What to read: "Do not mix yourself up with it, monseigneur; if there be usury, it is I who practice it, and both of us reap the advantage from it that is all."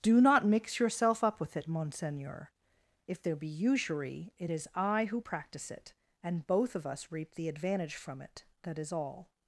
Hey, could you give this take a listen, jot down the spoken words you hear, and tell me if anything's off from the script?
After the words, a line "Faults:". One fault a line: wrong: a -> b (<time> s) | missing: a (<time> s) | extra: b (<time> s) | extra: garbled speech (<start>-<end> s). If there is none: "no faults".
"Do not mix yourself up with it, monseigneur; if there be usury, it is I who practice it, and both of us reap the advantage from it that is all."
Faults:
no faults